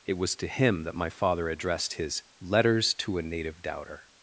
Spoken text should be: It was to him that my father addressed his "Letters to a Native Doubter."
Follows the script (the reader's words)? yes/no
yes